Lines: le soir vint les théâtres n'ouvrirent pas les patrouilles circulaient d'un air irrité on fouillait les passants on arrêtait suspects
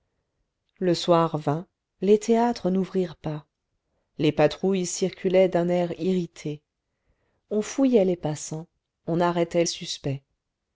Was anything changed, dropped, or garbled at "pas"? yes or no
no